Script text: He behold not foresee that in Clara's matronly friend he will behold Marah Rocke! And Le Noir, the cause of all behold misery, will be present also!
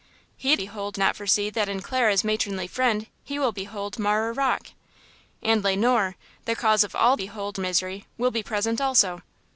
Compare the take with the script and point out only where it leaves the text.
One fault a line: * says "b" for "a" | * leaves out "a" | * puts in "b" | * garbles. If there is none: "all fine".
all fine